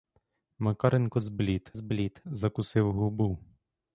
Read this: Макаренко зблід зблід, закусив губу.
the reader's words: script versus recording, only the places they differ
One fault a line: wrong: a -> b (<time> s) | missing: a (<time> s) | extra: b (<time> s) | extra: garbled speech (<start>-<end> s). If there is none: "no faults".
no faults